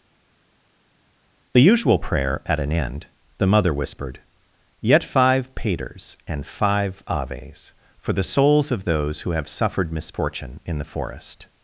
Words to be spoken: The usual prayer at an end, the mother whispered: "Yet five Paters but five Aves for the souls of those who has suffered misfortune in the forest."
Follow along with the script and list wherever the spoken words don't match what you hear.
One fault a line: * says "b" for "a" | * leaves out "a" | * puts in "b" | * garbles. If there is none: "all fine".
* says "and" for "but"
* says "have" for "has"